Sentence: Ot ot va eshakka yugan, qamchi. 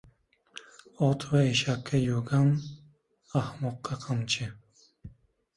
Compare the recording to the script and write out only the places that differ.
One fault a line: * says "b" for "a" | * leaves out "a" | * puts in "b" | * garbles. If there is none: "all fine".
* leaves out "ot"
* puts in "ahmoqqa"